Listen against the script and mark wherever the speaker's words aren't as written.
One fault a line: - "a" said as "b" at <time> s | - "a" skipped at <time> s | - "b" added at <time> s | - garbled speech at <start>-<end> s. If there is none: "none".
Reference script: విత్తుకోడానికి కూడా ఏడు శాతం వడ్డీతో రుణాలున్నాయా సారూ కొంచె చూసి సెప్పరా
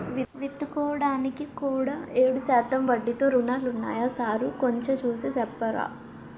none